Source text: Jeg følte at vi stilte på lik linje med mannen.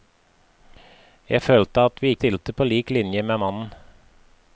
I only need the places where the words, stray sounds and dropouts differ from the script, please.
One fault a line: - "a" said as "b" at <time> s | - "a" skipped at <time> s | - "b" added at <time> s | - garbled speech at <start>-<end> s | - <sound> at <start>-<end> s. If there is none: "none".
none